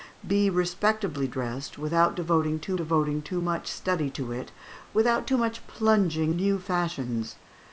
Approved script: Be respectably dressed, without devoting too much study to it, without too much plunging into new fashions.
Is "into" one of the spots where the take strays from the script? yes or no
yes